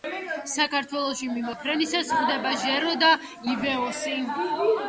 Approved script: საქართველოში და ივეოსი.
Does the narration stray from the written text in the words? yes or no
yes